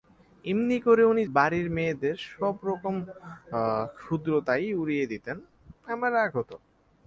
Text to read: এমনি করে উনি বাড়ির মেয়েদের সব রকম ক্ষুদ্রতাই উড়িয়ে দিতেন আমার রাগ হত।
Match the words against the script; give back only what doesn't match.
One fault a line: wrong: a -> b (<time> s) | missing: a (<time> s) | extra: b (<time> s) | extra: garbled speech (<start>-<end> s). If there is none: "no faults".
no faults